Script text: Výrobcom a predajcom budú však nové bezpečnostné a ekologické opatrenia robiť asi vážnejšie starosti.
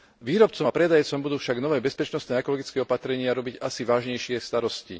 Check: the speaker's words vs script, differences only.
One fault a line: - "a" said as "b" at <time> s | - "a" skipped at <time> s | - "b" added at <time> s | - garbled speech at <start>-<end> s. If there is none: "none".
none